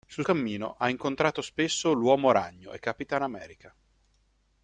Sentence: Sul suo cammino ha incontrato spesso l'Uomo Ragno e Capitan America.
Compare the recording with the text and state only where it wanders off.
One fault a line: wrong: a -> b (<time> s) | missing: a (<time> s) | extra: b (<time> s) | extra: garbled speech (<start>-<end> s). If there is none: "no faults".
missing: suo (0.2 s)